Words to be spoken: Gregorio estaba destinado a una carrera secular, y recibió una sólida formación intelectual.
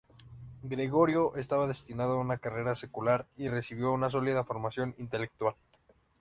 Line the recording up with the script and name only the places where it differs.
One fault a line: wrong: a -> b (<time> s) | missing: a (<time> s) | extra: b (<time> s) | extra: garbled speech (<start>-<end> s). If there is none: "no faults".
no faults